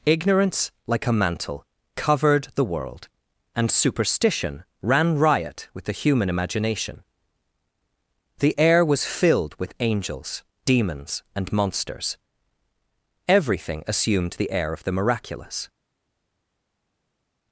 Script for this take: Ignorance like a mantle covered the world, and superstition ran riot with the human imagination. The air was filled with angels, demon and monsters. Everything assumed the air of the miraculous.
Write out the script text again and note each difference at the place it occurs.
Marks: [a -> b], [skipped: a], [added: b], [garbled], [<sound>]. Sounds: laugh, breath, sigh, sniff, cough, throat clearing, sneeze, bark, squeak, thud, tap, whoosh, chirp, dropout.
Ignorance like a mantle covered the world, and superstition ran riot with the human imagination. The air was filled with angels, [demon -> demons] and monsters. Everything assumed the air of the miraculous.